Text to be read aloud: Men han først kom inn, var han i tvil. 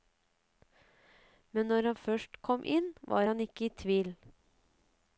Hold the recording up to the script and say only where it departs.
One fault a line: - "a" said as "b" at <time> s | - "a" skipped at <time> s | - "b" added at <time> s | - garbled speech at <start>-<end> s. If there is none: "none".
- "når" added at 1.7 s
- "ikke" added at 3.5 s